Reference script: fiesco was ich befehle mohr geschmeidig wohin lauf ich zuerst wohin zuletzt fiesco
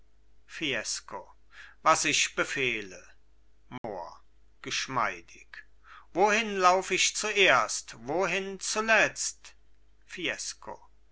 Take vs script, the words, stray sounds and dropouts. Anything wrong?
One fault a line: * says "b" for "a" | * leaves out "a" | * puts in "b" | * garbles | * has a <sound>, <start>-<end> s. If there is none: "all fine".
* has a dropout, 3.8-3.8 s